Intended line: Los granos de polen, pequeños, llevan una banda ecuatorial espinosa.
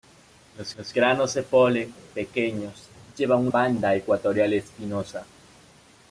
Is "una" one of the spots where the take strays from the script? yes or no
yes